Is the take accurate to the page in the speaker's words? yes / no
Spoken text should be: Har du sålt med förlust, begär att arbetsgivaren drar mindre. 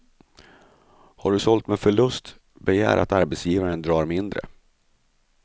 yes